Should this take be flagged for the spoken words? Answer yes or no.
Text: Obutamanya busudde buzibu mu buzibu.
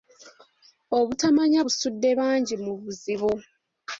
yes